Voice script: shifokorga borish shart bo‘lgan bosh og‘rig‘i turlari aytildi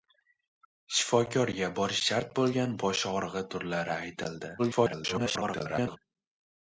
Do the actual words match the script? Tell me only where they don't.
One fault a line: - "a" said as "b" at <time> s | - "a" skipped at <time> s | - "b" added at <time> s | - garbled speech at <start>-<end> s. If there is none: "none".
- garbled speech at 4.6-6.0 s